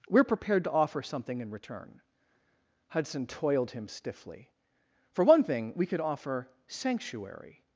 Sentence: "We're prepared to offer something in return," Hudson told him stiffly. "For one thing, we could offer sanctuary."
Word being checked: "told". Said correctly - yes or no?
no